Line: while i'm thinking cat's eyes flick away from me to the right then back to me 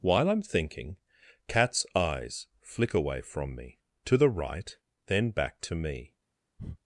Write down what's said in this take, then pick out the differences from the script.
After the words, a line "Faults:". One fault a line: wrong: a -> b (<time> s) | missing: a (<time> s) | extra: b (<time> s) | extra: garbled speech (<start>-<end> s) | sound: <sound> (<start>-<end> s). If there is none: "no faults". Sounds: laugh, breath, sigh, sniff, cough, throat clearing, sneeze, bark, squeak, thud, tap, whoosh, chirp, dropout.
while i'm thinking cat's eyes flick away from me to the right then back to me
Faults:
sound: breath (6.6-6.8 s)